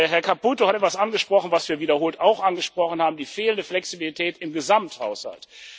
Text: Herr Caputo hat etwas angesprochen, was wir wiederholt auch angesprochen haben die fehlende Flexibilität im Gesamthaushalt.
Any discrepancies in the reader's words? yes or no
no